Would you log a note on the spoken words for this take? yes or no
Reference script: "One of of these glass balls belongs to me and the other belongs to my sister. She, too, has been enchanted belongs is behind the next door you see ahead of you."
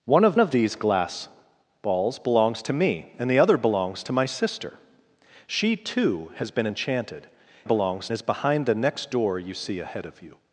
no